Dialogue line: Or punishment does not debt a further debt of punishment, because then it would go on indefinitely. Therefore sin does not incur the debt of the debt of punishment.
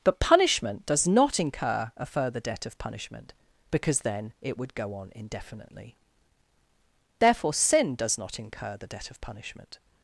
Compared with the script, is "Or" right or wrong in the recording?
wrong